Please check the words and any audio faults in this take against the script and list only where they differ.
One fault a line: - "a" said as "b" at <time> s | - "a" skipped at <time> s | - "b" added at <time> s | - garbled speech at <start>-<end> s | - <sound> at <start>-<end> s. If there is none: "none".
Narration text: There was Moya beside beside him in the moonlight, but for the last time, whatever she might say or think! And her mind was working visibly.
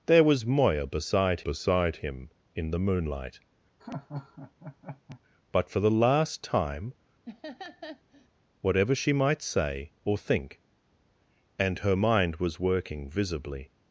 - laugh at 3.8-5.2 s
- laugh at 7.2-8.3 s